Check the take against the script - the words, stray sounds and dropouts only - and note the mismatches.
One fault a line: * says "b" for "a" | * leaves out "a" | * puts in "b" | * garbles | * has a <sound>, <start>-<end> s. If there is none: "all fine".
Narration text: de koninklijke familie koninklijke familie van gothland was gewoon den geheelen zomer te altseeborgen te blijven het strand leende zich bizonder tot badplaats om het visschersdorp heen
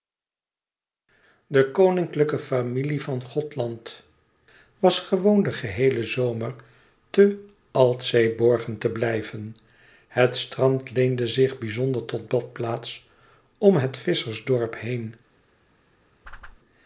* leaves out "koninklijke familie"
* has a whoosh, 16.2-16.6 s